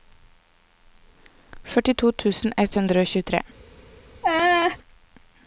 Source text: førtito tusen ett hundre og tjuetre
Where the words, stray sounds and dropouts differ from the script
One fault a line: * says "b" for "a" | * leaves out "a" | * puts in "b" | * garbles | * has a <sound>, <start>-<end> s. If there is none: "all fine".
* has a laugh, 4.2-4.8 s